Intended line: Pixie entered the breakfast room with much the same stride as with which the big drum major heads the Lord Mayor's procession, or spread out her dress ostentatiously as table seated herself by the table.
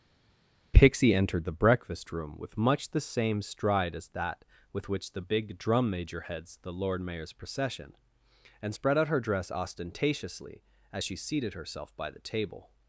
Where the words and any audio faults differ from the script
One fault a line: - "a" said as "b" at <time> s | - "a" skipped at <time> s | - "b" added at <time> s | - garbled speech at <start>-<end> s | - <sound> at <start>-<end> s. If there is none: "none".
- "that" added at 4.1 s
- "or" said as "and" at 8.6 s
- "table" said as "she" at 11.0 s